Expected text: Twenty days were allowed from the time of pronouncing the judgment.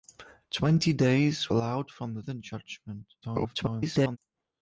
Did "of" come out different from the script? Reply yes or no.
yes